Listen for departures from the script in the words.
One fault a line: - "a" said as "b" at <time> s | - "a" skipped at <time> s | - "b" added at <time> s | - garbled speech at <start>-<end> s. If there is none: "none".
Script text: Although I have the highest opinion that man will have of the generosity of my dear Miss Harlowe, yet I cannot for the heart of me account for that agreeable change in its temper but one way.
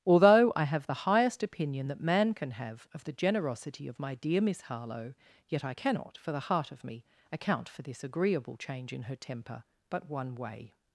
- "will" said as "can" at 2.3 s
- "that" said as "this" at 7.8 s
- "its" said as "her" at 9.0 s